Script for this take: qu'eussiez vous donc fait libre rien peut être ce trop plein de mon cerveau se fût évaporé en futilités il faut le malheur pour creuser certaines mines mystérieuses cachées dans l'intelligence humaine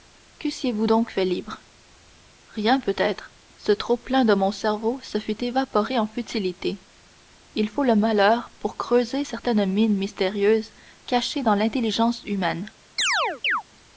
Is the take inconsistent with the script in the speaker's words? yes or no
no